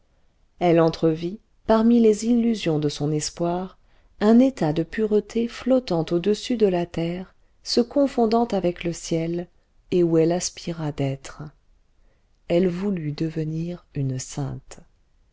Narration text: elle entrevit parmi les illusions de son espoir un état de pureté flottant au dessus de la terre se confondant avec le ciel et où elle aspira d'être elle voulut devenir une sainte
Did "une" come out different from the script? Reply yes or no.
no